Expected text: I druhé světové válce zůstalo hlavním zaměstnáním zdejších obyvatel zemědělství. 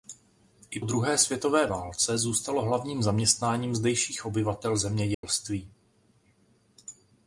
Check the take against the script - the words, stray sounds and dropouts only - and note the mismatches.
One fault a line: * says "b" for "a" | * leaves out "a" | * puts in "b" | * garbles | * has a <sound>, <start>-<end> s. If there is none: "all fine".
* has a dropout, 5.1-5.2 s